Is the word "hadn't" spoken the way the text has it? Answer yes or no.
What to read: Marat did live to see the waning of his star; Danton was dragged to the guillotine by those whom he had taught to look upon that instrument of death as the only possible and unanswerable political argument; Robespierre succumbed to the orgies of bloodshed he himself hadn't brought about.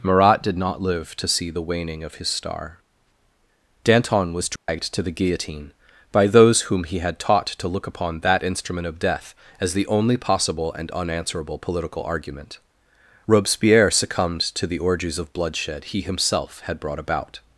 no